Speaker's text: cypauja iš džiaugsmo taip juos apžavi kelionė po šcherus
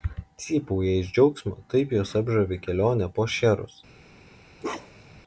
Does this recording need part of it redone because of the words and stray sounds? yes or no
yes